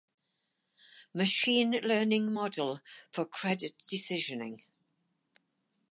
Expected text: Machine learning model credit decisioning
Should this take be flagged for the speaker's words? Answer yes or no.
yes